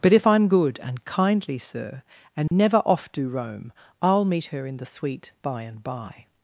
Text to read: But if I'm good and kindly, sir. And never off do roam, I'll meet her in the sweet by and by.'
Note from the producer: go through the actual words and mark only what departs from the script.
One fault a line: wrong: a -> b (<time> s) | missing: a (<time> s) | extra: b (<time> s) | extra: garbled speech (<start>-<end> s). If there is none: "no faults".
no faults